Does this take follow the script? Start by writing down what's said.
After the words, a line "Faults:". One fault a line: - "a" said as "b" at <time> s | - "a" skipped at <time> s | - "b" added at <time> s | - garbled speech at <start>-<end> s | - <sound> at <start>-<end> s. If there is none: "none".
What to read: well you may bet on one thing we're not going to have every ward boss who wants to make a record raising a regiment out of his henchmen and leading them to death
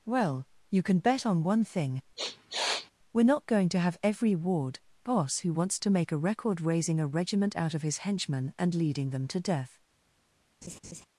well you can bet on one thing we're not going to have every ward boss who wants to make a record raising a regiment out of his henchmen and leading them to death
Faults:
- "may" said as "can" at 0.8 s
- sniff at 2.2-2.9 s
- laugh at 10.6-11.1 s